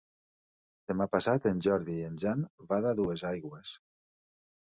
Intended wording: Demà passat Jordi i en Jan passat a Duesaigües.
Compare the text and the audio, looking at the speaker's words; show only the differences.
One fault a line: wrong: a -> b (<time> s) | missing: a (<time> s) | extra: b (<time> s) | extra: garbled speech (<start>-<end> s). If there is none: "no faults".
extra: en (1.5 s)
wrong: passat -> van (2.7 s)